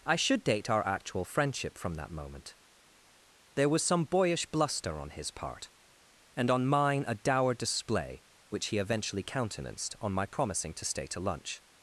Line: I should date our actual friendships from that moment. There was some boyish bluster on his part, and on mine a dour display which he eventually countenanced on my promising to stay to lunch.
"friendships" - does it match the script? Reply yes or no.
no